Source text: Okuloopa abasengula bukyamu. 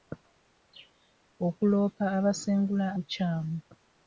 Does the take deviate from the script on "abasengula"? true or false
false